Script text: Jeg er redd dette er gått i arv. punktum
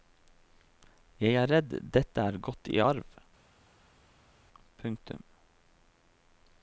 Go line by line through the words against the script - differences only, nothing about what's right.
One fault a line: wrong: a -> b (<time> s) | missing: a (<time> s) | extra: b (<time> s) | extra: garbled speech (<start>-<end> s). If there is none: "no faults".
no faults